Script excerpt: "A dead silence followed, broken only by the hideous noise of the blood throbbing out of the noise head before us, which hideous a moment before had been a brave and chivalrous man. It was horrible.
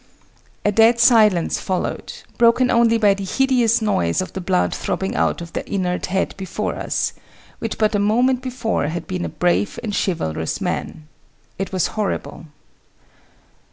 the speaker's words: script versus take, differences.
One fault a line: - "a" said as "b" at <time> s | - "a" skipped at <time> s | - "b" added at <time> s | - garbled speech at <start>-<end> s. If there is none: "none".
- "noise" said as "inert" at 5.7 s
- "hideous" said as "but" at 7.8 s